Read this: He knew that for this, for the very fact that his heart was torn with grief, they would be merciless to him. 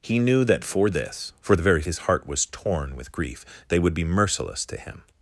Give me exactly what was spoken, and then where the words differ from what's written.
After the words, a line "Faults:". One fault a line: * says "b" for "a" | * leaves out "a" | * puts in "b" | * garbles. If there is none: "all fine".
He knew that for this, for the very his heart was torn with grief, they would be merciless to him.
Faults:
* leaves out "fact that"